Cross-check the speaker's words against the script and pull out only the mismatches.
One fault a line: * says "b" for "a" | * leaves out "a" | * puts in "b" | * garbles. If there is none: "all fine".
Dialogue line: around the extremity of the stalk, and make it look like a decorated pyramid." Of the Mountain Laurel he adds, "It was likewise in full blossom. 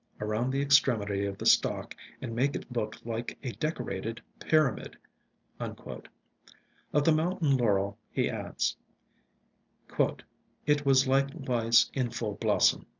all fine